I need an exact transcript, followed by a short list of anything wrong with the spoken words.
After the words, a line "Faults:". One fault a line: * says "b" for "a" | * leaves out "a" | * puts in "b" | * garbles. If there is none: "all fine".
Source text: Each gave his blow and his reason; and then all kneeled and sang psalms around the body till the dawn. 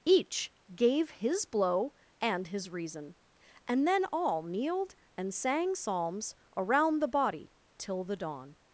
Each gave his blow and his reason; and then all kneeled and sang psalms around the body till the dawn.
Faults:
all fine